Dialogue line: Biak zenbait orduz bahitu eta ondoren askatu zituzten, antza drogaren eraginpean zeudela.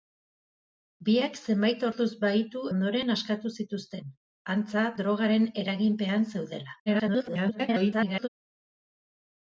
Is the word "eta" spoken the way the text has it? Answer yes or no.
no